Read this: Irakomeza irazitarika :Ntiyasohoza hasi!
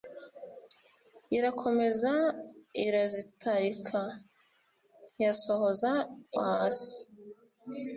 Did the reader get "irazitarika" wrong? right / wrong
right